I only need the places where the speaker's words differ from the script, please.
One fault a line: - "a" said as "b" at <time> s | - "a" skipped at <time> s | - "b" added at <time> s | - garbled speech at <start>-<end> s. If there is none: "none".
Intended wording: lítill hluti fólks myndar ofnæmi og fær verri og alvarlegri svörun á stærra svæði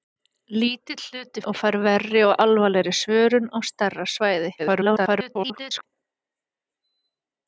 - "fólks myndar ofnæmi" skipped at 1.4 s
- garbled speech at 4.6-5.8 s